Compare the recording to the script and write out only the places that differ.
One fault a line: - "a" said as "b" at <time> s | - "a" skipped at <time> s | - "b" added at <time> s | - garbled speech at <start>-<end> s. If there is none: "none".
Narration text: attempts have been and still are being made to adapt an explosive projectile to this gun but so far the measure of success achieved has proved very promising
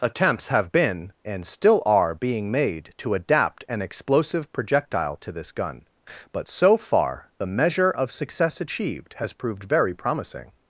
none